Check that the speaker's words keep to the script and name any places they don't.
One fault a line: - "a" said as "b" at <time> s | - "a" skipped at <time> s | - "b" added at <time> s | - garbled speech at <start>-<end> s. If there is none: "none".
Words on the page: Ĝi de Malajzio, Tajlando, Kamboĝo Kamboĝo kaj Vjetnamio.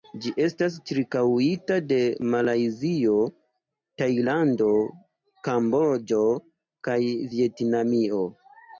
- "estas ĉirkaŭita" added at 0.4 s
- "Kamboĝo" skipped at 6.3 s